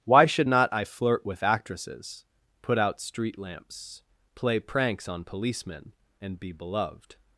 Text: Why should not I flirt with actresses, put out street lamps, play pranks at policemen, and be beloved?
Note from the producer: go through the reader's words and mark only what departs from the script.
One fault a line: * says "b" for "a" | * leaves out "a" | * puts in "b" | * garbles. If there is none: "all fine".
* says "on" for "at"